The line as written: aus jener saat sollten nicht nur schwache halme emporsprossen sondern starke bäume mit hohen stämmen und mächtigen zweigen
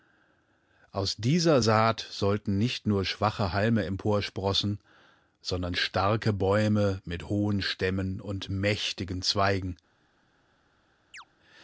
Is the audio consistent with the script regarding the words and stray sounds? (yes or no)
no